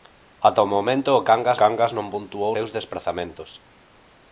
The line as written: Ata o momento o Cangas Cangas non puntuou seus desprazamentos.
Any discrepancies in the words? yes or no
no